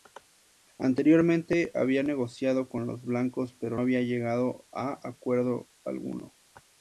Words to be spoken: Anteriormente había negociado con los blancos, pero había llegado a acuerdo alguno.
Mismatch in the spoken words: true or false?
false